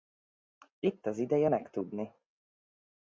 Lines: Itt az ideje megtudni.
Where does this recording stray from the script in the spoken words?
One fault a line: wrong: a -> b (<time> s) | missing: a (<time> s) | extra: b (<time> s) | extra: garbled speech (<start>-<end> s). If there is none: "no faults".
no faults